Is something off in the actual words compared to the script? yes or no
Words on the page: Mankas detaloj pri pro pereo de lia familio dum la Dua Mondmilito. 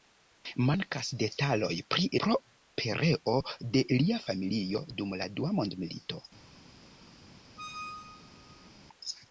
no